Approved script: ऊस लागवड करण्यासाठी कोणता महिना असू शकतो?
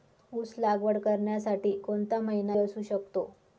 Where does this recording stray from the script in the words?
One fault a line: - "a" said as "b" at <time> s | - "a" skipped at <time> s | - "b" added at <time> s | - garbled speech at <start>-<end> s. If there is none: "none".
none